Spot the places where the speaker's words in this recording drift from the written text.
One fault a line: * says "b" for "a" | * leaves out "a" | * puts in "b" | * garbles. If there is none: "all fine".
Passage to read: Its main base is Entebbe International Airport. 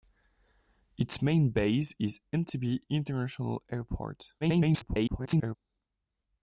* garbles